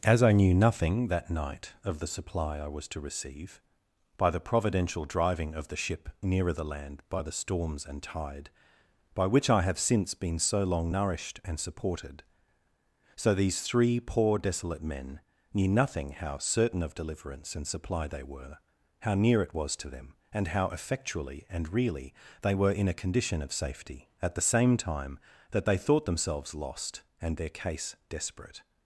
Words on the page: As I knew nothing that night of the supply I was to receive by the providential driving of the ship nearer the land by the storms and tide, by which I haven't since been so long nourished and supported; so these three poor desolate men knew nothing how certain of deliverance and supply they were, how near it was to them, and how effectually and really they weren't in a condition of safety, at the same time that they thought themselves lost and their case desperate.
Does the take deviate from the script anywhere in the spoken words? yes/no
yes